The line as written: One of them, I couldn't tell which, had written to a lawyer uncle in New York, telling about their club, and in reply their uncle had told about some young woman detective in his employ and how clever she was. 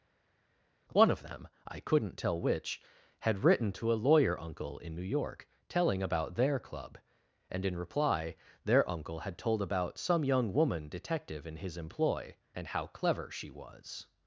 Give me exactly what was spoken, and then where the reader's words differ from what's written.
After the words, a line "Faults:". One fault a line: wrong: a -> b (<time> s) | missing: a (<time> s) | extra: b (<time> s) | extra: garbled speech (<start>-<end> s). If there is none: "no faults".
One of them, I couldn't tell which, had written to a lawyer uncle in New York, telling about their club, and in reply their uncle had told about some young woman detective in his employ and how clever she was.
Faults:
no faults